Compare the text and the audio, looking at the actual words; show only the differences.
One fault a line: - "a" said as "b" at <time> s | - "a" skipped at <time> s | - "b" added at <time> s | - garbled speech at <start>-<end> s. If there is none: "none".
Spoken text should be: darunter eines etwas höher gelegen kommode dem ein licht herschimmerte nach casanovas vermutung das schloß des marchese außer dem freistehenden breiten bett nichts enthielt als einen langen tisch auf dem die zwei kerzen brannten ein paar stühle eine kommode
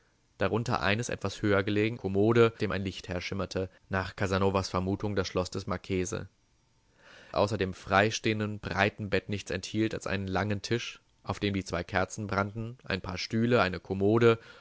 none